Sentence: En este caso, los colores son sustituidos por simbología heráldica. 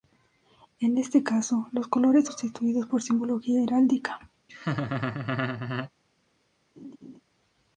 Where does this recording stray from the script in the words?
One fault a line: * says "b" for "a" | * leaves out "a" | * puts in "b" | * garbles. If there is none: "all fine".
* leaves out "son"